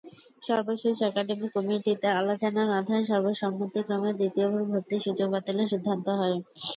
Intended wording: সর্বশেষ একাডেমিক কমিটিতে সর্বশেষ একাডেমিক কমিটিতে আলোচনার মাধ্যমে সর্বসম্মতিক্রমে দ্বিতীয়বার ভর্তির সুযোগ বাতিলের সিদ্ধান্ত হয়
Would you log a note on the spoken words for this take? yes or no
yes